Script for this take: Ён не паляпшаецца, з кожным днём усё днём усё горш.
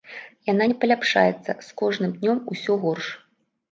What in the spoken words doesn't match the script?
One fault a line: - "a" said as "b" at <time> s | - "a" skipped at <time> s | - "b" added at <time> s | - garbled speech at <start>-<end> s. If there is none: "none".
- "Ён" said as "Яна" at 0.5 s
- "днём усё" skipped at 2.7 s